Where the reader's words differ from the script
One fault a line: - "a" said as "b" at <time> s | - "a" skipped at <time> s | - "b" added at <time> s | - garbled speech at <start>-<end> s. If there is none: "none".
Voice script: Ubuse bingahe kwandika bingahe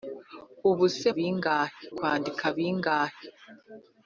none